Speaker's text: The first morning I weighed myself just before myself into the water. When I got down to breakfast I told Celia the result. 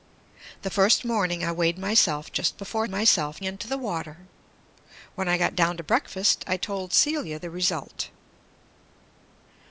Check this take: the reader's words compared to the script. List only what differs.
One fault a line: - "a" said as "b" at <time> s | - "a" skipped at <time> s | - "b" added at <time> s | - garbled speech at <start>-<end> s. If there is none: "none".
none